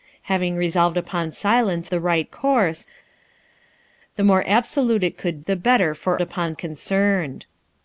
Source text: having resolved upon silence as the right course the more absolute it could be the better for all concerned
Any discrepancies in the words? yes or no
yes